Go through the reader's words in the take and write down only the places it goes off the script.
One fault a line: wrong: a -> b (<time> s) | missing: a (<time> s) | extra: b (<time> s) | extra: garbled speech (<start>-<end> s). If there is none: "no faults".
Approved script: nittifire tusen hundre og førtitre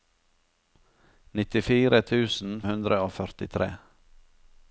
no faults